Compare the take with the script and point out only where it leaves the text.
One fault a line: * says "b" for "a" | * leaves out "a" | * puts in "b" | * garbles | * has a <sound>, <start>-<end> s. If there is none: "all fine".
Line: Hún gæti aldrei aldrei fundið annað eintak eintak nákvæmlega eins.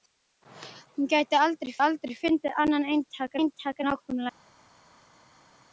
all fine